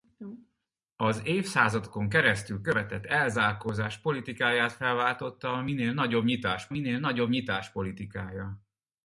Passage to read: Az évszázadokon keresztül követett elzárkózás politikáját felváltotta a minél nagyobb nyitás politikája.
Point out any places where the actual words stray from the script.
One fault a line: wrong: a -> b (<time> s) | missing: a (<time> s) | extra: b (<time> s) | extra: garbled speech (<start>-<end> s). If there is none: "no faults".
extra: minél nagyobb nyitás (6.7 s)